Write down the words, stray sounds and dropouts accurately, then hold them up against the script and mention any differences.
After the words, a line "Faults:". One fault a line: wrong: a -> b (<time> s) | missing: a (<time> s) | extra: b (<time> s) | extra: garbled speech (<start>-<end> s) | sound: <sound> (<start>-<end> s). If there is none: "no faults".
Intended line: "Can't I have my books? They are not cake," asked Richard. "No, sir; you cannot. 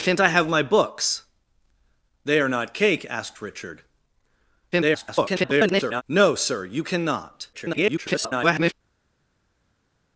"Can't I have my books? They are not cake," asked Richard. [garbled] "No, sir; you cannot. [garbled]
Faults:
extra: garbled speech (4.7-6.0 s)
extra: garbled speech (7.5-8.7 s)